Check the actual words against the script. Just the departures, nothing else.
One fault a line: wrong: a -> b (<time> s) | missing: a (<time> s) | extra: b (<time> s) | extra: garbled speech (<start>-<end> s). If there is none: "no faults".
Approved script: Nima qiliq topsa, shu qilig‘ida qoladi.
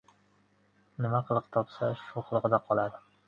no faults